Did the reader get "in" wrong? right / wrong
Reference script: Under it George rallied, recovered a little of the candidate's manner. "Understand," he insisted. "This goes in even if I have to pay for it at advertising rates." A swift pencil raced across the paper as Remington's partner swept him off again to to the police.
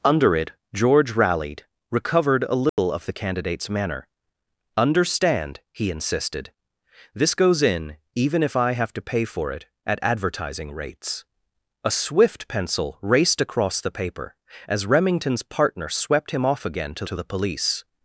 right